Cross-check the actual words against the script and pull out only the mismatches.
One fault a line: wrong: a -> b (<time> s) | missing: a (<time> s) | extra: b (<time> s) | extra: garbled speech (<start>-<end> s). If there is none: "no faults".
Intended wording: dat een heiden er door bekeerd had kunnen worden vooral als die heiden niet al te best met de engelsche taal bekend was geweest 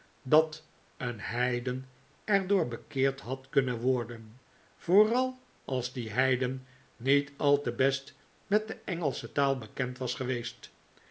no faults